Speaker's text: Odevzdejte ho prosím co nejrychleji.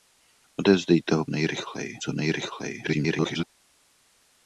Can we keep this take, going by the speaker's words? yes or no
no